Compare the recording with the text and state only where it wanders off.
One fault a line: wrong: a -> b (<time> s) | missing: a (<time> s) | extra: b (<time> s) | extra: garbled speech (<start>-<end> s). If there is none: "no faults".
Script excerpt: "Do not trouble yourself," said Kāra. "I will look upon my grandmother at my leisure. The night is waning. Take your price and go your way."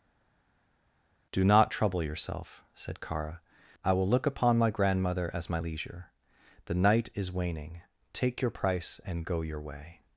wrong: at -> as (5.3 s)